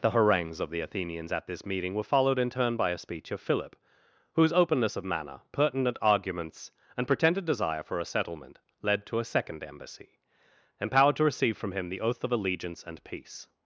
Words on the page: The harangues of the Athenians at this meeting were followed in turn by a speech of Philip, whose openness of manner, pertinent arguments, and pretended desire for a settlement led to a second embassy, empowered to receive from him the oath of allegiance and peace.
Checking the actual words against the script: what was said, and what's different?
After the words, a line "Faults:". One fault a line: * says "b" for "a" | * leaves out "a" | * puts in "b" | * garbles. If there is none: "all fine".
The harangues of the Athenians at this meeting were followed in turn by a speech of Philip, whose openness of manner, pertinent arguments, and pretended desire for a settlement led to a second embassy, empowered to receive from him the oath of allegiance and peace.
Faults:
all fine